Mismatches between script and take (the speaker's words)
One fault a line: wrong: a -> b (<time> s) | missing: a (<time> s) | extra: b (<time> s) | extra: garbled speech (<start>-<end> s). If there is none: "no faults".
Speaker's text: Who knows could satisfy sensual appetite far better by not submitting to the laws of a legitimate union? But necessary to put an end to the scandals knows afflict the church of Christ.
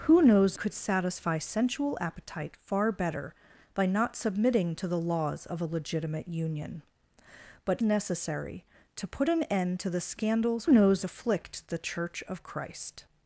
no faults